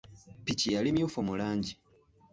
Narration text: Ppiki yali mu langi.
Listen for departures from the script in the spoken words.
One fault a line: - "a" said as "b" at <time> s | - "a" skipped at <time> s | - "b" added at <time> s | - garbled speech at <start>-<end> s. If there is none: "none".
- "mmyufu" added at 0.9 s